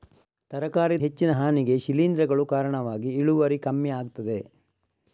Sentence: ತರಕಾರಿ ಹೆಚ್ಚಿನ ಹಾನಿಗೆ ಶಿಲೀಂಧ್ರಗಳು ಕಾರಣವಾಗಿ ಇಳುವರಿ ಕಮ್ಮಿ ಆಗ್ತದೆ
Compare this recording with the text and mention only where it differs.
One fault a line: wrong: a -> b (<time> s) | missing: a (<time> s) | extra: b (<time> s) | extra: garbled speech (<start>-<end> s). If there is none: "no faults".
no faults